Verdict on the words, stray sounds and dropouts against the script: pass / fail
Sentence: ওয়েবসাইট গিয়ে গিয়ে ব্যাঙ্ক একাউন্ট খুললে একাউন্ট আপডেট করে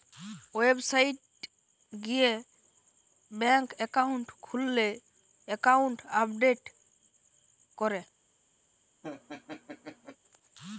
fail